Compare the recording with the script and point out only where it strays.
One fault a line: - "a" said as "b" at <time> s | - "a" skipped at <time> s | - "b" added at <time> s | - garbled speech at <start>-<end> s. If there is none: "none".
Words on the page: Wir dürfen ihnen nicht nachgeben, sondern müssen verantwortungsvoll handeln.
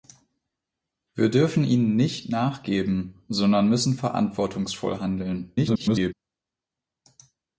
- garbled speech at 5.6-6.1 s